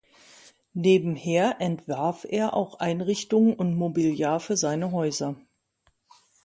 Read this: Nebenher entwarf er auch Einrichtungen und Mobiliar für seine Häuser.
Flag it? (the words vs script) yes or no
no